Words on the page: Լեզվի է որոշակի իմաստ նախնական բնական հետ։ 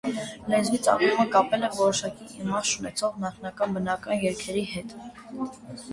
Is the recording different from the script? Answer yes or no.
yes